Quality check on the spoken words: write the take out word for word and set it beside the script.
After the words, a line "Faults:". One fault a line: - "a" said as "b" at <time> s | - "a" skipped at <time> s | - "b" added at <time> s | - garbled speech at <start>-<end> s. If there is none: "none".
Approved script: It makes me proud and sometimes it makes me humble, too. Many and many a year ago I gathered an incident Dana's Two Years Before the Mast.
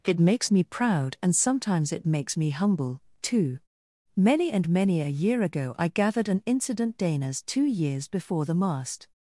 It makes me proud and sometimes it makes me humble, too. Many and many a year ago I gathered an incident Dana's Two Years Before the Mast.
Faults:
none